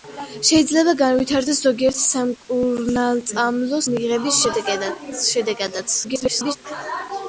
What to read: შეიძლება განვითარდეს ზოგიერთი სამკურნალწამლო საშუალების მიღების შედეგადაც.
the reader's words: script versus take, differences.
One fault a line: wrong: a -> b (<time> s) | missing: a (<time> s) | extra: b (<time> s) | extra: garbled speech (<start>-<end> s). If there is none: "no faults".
missing: საშუალების (3.8 s)
extra: garbled speech (6.0-6.6 s)